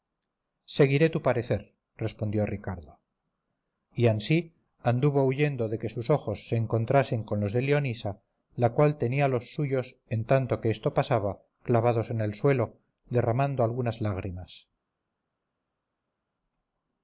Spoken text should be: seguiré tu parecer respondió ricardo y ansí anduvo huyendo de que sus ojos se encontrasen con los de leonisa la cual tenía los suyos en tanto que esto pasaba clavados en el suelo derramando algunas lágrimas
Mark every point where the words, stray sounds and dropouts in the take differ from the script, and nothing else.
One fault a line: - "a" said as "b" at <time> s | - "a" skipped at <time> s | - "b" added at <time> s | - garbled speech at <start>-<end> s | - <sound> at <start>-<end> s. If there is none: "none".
none